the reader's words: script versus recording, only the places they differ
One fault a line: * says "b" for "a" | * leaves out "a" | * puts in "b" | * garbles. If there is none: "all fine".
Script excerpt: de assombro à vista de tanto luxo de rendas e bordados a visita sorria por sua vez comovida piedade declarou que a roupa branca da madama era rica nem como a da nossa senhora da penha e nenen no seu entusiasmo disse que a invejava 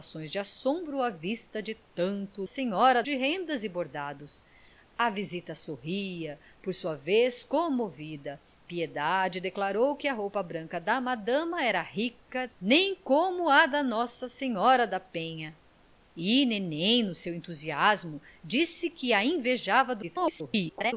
* says "senhora" for "luxo"
* garbles